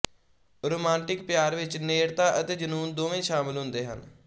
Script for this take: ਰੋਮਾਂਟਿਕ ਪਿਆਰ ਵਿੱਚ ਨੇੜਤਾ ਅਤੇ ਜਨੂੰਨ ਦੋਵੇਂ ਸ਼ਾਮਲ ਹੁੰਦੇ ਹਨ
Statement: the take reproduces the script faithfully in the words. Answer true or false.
true